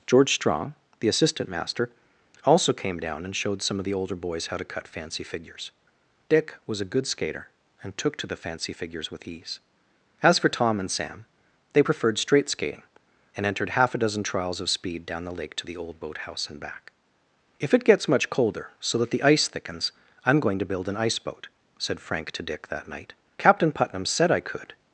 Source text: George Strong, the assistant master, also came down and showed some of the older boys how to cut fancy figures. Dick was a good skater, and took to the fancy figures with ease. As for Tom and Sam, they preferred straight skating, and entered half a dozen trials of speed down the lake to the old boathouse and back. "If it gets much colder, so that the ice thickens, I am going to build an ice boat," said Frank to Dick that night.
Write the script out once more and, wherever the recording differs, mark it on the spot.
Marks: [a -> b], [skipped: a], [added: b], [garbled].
George Strong, the assistant master, also came down and showed some of the older boys how to cut fancy figures. Dick was a good skater, and took to the fancy figures with ease. As for Tom and Sam, they preferred straight skating, and entered half a dozen trials of speed down the lake to the old boathouse and back. "If it gets much colder, so that the ice thickens, I am going to build an ice boat," said Frank to Dick that night. [added: Captain Putnam said I could]